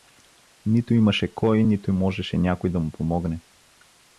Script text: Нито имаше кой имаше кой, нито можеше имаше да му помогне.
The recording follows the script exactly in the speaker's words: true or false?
false